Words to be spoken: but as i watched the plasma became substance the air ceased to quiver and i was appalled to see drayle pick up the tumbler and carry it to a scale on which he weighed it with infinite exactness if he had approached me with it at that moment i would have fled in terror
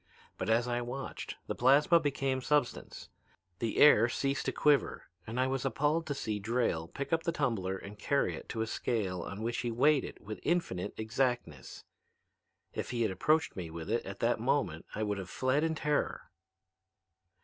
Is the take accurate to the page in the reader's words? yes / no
yes